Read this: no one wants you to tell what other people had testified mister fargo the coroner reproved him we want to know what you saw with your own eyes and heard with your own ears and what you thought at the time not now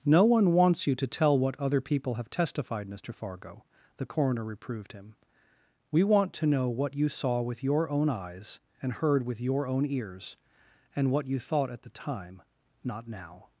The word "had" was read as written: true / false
false